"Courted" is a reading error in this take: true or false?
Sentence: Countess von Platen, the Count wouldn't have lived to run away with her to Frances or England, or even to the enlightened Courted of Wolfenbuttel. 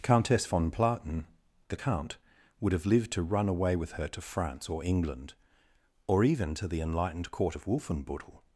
true